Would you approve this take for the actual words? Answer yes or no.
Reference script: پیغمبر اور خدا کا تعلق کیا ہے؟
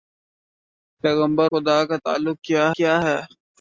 no